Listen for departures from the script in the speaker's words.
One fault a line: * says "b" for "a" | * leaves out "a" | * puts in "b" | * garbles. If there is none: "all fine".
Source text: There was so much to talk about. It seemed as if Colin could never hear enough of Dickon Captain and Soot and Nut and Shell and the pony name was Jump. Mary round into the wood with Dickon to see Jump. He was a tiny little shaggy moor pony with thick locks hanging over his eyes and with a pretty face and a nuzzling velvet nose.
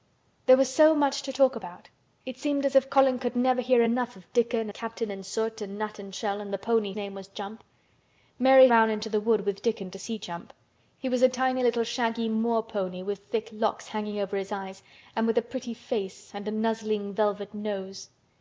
all fine